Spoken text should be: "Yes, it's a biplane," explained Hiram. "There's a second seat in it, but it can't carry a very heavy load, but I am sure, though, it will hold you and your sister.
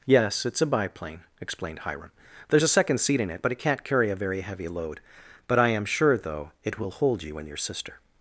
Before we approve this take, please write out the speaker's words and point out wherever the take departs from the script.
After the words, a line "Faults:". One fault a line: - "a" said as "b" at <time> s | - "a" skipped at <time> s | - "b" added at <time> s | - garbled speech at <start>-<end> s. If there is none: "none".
"Yes, it's a biplane," explained Hiram. "There's a second seat in it, but it can't carry a very heavy load, but I am sure, though, it will hold you and your sister.
Faults:
none